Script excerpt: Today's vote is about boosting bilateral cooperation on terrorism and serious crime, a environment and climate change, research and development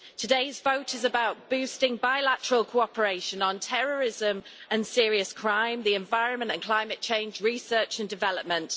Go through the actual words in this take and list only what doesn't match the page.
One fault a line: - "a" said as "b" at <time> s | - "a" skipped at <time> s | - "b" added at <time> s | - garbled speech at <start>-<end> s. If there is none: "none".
- "a" said as "the" at 5.8 s